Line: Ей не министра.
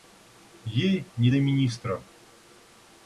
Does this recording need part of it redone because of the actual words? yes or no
yes